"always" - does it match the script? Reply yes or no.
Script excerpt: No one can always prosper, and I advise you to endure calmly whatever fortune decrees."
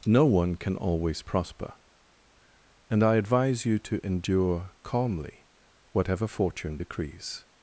yes